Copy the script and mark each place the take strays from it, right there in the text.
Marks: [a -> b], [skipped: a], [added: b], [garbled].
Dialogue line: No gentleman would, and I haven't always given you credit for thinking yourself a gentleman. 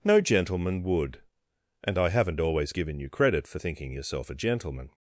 No gentleman would, and I haven't always given you credit for thinking yourself a gentleman.